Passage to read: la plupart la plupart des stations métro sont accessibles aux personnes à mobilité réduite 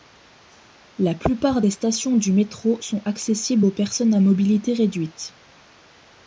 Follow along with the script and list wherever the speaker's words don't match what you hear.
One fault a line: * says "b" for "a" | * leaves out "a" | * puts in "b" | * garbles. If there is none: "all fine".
* leaves out "la plupart"
* puts in "du"